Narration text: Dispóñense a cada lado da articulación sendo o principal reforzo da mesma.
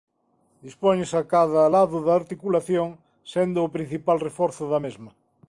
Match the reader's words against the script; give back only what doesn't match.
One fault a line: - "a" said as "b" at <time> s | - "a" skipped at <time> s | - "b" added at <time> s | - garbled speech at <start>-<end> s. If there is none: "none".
none